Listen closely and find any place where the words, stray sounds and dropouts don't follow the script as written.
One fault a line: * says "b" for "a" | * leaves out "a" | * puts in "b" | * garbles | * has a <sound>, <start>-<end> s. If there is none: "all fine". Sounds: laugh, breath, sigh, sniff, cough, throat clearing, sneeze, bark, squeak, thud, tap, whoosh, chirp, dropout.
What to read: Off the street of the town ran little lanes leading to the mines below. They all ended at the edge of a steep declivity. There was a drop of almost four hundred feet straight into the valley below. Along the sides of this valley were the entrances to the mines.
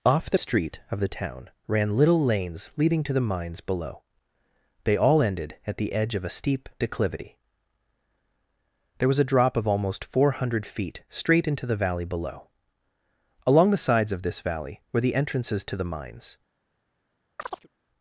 * has a chirp, 17.4-17.7 s